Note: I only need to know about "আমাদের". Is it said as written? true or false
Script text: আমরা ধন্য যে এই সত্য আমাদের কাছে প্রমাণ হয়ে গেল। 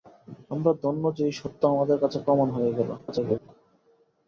true